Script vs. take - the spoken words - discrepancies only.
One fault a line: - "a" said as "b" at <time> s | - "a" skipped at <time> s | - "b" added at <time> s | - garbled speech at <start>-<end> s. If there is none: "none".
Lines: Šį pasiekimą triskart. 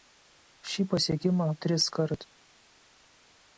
none